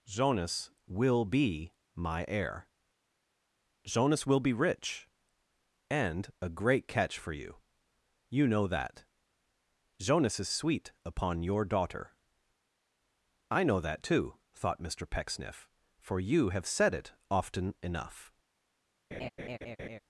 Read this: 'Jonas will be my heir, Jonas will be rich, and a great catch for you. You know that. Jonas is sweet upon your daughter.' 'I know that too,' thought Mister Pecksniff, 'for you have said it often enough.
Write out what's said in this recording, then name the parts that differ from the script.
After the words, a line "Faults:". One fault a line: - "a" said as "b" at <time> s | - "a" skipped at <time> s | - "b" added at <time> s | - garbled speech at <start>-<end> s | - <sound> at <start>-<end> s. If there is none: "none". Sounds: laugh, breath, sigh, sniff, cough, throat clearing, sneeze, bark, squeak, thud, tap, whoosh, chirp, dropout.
'Jonas will be my heir, Jonas will be rich, and a great catch for you. You know that. Jonas is sweet upon your daughter.' 'I know that too,' thought Mister Pecksniff, 'for you have said it often enough.
Faults:
- laugh at 19.1-20.0 s